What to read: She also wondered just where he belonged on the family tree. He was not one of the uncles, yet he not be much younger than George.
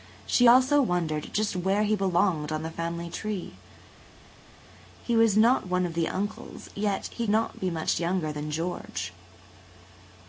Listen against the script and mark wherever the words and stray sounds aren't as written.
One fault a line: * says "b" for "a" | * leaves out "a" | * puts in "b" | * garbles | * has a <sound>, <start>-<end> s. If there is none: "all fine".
all fine